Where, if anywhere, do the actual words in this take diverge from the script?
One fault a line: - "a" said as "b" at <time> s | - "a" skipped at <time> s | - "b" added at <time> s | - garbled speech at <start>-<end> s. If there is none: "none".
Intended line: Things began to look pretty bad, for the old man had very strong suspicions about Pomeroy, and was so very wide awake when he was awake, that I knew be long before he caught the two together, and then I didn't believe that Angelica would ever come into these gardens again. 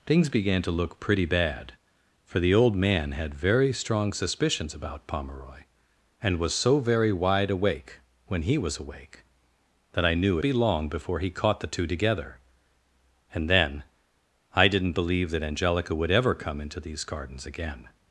none